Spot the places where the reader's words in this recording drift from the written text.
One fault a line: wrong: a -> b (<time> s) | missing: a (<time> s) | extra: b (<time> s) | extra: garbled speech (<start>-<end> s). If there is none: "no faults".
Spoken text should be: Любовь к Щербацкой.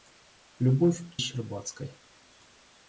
no faults